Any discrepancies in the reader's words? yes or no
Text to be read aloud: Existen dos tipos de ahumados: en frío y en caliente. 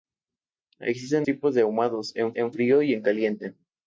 yes